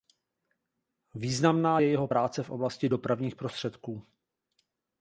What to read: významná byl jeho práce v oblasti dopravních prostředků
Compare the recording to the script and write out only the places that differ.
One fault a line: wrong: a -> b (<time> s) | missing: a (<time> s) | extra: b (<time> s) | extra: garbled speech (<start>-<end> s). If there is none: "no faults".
wrong: byl -> je (1.8 s)